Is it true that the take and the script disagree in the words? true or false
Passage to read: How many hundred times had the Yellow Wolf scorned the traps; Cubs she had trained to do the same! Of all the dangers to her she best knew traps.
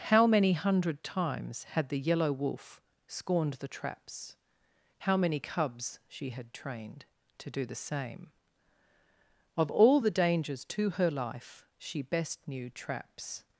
true